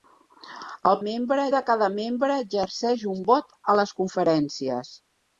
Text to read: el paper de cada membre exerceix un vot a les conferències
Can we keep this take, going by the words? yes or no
no